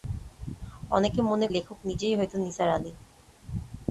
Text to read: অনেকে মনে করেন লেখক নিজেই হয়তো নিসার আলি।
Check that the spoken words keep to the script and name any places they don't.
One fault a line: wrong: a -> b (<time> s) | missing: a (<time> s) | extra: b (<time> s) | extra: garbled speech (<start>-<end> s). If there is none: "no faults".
missing: করেন (1.5 s)